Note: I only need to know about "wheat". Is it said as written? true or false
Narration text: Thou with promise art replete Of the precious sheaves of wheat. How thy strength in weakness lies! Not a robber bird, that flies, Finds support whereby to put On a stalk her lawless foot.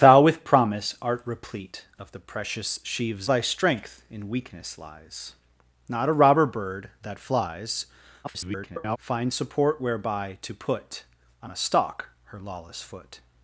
false